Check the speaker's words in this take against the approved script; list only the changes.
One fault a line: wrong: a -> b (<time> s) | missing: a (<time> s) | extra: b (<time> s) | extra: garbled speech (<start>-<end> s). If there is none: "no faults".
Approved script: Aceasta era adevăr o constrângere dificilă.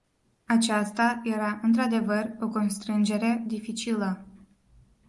extra: într (1.6 s)